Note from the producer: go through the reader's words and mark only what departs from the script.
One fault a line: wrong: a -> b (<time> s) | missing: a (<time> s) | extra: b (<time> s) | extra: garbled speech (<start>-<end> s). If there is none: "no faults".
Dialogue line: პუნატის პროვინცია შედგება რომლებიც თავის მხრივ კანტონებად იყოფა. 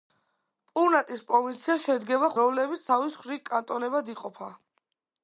no faults